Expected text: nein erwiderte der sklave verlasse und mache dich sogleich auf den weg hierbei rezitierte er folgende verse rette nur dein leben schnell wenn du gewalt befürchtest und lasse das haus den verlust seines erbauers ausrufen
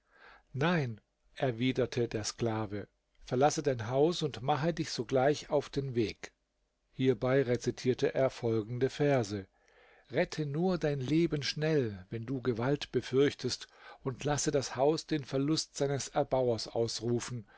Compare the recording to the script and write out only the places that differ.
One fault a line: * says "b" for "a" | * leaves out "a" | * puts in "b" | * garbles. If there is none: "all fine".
* puts in "dein haus"